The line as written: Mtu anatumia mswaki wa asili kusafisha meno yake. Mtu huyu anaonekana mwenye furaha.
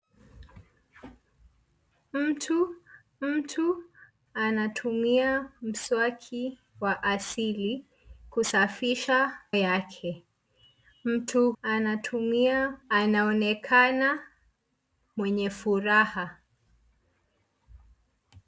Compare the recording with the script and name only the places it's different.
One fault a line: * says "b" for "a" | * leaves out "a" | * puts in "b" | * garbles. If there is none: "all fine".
* puts in "mtu"
* leaves out "meno"
* says "anatumia" for "huyu"